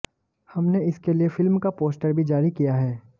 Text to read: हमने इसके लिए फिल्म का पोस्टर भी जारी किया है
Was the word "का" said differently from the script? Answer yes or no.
no